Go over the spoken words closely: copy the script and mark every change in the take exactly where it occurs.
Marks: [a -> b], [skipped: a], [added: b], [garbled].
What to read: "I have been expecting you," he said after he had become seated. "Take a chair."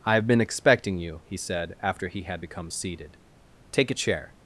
"I have been expecting you," he said after he had become seated. "Take a chair."